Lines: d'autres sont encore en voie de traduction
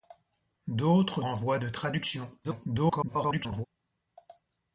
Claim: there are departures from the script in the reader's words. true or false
true